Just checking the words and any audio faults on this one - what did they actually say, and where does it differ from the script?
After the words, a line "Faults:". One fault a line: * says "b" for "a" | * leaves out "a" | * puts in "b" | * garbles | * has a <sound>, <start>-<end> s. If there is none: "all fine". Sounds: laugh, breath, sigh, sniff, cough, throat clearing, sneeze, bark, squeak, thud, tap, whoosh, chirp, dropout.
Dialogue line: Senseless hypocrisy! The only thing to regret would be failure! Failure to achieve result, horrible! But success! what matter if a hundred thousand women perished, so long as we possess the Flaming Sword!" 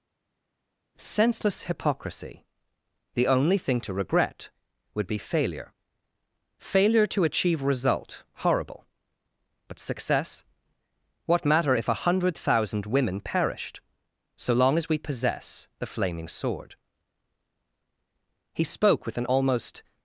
Senseless hypocrisy! The only thing to regret would be failure! Failure to achieve result, horrible! But success! what matter if a hundred thousand women perished, so long as we possess the Flaming Sword!" He spoke with an almost
Faults:
* puts in "He spoke with an almost"